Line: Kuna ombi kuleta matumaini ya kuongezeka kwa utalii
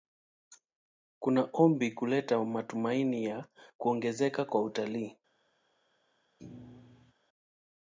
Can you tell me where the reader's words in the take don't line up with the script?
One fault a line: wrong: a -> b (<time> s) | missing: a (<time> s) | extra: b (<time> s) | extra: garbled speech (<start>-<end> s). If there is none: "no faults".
no faults